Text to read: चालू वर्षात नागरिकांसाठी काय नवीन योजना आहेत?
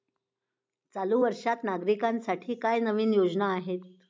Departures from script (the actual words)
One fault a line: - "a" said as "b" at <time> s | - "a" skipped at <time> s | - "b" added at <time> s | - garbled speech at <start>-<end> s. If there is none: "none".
none